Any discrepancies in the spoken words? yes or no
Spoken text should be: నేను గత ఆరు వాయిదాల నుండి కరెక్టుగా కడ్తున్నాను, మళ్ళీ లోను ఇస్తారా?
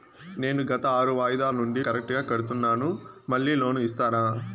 no